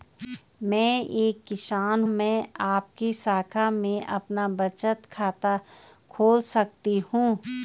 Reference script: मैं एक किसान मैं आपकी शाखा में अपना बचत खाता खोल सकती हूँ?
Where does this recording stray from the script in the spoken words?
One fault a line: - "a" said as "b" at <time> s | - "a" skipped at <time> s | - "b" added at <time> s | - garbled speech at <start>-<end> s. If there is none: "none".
none